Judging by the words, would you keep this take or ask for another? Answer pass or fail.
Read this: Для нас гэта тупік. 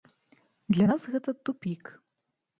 pass